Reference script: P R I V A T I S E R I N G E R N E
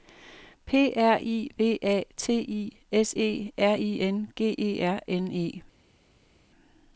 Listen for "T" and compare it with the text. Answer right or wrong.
right